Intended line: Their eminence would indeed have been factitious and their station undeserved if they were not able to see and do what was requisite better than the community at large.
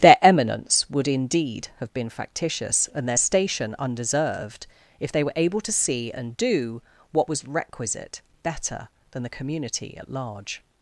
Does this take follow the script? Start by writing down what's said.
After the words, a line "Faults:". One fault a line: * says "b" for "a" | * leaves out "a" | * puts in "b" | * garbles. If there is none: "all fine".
Their eminence would indeed have been factitious and their station undeserved if they were able to see and do what was requisite better than the community at large.
Faults:
* leaves out "not"